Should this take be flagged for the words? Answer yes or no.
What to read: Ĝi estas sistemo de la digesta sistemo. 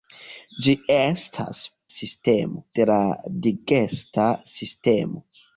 no